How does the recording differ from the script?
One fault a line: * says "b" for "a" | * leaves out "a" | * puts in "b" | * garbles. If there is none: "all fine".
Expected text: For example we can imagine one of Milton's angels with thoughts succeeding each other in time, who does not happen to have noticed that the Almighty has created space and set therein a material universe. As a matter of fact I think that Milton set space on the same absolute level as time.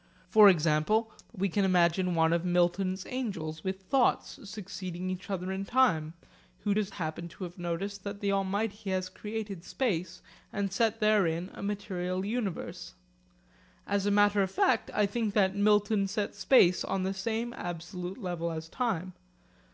* leaves out "not"